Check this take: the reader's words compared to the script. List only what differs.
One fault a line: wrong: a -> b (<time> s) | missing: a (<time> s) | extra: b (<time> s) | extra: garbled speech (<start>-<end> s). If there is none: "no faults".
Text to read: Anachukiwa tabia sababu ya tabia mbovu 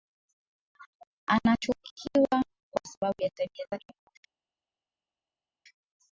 wrong: tabia -> kwa (2.7 s)
extra: zake (3.7 s)